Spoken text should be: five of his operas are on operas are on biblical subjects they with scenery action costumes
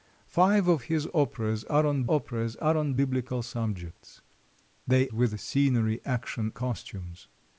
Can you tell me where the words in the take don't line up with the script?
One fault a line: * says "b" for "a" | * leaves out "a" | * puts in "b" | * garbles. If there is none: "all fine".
all fine